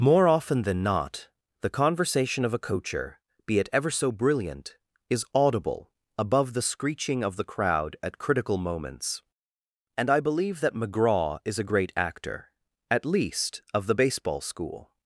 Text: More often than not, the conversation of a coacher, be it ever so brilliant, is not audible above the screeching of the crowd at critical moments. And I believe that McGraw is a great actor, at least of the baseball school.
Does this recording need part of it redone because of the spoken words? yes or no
yes